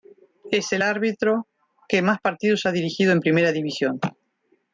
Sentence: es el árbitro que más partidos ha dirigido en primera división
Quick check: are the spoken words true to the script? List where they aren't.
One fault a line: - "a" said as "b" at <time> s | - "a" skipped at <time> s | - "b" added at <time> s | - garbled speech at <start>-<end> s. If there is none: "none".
none